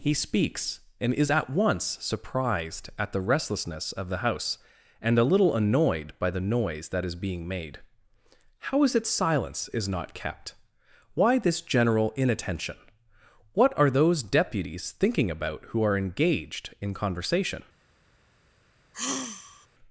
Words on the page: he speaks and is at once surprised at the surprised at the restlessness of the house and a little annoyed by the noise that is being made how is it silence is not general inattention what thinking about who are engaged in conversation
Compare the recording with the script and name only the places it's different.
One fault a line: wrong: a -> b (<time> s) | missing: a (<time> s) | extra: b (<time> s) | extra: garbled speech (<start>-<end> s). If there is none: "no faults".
missing: surprised at the (3.2 s)
extra: kept why this (10.2 s)
extra: are those deputies (13.8 s)